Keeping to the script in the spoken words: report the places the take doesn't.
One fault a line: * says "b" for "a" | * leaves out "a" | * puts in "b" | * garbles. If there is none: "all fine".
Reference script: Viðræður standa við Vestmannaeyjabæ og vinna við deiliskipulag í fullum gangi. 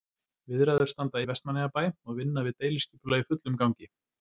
all fine